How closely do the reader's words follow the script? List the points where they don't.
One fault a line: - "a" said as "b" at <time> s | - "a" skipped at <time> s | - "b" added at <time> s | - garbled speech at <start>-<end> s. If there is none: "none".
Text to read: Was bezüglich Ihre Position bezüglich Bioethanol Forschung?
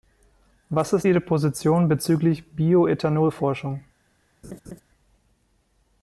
- "bezüglich" said as "ist" at 0.9 s